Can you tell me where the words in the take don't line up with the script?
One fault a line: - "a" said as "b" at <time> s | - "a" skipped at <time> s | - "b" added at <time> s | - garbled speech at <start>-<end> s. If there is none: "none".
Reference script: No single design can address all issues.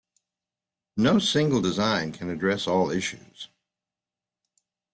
none